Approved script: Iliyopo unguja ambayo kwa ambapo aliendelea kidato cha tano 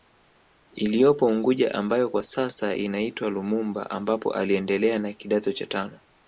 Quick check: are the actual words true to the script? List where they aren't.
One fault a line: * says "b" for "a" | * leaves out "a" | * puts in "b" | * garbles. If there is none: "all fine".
* puts in "sasa inaitwa Lumumba"
* puts in "na"